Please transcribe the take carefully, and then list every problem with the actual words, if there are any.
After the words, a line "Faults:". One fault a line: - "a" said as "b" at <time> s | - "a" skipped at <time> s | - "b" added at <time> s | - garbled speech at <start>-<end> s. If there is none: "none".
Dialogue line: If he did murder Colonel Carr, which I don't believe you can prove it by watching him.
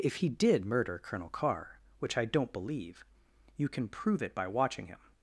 If he did murder Colonel Carr, which I don't believe you can prove it by watching him.
Faults:
none